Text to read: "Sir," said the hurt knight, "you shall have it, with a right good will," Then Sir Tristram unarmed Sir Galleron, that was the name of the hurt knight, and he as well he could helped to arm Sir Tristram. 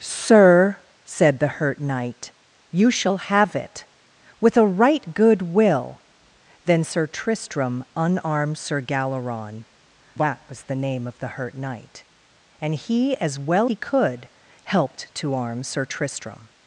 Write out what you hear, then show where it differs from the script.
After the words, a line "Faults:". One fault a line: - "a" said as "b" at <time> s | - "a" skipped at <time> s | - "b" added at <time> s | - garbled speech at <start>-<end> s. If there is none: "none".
"Sir," said the hurt knight, "you shall have it, with a right good will," Then Sir Tristram unarmed Sir Galleron, that was the name of the hurt knight, and he as well he could helped to arm Sir Tristram.
Faults:
none